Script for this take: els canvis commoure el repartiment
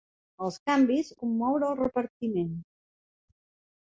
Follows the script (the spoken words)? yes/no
yes